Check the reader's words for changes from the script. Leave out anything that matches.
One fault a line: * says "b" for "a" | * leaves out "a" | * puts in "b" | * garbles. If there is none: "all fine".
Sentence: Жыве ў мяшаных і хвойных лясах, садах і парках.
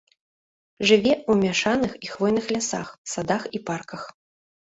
all fine